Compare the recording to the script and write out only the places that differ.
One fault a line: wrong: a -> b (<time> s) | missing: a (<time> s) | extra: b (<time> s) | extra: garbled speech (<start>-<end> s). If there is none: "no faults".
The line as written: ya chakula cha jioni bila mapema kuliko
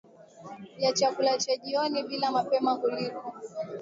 no faults